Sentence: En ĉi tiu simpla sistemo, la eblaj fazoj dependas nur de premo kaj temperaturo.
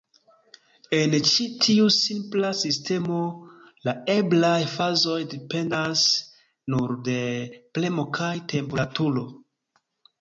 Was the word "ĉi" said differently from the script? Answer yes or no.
no